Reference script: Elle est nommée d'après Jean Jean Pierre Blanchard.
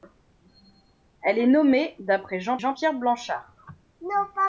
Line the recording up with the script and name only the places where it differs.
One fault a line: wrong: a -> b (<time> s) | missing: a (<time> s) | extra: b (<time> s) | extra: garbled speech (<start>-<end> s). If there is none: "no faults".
no faults